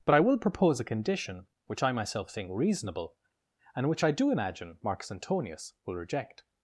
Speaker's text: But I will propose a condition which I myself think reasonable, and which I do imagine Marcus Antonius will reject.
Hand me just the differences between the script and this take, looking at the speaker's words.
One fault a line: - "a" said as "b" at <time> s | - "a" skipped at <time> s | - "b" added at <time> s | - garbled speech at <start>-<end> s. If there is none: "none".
none